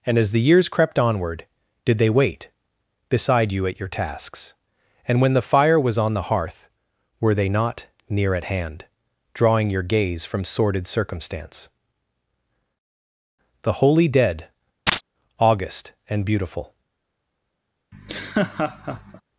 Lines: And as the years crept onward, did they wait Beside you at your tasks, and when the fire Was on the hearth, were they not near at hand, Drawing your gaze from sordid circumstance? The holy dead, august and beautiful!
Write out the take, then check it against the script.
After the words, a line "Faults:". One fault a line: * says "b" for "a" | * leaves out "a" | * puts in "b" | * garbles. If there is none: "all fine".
And as the years crept onward, did they wait Beside you at your tasks, and when the fire Was on the hearth, were they not near at hand, Drawing your gaze from sordid circumstance? The holy dead, august and beautiful!
Faults:
all fine